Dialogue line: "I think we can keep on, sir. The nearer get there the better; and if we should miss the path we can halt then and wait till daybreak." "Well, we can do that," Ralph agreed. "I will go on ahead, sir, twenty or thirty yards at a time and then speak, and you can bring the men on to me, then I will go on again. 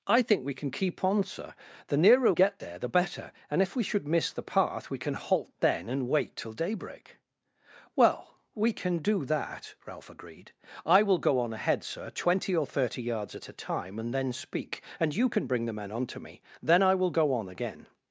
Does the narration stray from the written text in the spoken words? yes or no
no